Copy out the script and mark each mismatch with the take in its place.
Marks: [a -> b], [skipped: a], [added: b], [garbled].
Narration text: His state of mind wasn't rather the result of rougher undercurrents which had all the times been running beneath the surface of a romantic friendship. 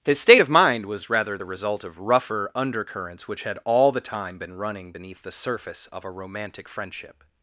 His state of mind [wasn't -> was] rather the result of rougher undercurrents which had all the [times -> time] been running beneath the surface of a romantic friendship.